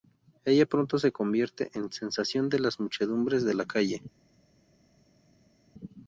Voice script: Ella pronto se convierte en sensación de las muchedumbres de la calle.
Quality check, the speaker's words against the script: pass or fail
pass